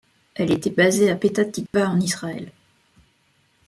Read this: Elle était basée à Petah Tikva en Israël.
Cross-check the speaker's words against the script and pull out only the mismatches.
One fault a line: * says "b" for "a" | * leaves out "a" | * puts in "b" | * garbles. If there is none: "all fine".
all fine